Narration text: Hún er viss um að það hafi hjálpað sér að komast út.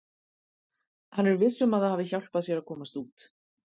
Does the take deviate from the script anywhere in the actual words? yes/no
yes